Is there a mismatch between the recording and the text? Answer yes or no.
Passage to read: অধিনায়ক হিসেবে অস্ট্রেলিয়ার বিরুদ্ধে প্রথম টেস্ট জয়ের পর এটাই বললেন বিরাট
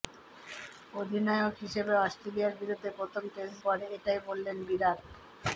yes